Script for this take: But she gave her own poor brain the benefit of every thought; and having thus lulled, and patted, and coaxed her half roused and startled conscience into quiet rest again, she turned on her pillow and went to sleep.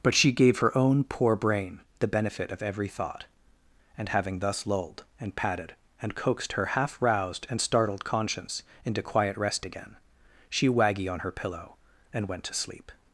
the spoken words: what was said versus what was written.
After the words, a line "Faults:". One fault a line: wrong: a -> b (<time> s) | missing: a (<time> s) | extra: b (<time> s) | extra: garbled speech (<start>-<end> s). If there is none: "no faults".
But she gave her own poor brain the benefit of every thought; and having thus lulled, and patted, and coaxed her half roused and startled conscience into quiet rest again, she waggy on her pillow and went to sleep.
Faults:
wrong: turned -> waggy (10.7 s)